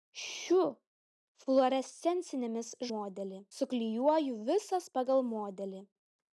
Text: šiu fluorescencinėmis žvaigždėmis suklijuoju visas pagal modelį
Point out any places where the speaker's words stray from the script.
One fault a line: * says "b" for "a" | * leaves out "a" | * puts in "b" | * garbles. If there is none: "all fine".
* says "modelį" for "žvaigždėmis"